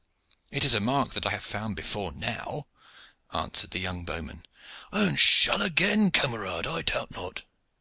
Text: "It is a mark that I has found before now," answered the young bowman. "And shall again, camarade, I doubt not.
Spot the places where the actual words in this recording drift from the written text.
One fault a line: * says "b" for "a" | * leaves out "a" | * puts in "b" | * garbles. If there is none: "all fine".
* says "have" for "has"